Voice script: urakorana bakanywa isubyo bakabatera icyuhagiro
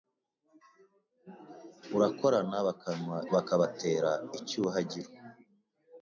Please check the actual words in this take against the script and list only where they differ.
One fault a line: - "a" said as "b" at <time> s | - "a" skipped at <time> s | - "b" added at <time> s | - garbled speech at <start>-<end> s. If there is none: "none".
- "isubyo" skipped at 3.2 s